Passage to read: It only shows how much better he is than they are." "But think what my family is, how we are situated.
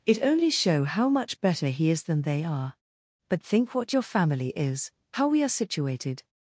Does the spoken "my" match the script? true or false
false